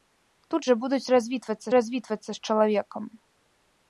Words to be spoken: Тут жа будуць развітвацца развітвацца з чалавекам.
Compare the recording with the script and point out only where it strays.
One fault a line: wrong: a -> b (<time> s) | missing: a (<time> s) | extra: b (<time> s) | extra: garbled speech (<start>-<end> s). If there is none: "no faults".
no faults